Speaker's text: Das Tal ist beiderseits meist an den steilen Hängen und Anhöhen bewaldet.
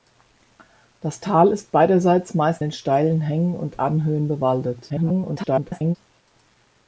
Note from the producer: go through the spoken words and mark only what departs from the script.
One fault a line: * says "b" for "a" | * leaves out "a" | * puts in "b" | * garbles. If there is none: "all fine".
* leaves out "an"
* garbles